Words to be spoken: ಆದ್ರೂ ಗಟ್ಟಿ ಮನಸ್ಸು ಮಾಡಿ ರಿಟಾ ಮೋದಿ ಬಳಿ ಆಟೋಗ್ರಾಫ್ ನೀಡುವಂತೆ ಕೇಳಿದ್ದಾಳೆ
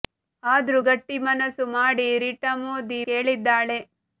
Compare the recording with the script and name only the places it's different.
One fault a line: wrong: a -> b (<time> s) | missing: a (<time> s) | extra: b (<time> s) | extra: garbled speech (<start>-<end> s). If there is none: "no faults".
missing: ಬಳಿ ಆಟೋಗ್ರಾಫ್ ನೀಡುವಂತೆ (3.0 s)